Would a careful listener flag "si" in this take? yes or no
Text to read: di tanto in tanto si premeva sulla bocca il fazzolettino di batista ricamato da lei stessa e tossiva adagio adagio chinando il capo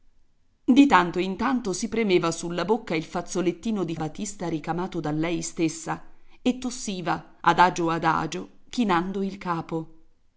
no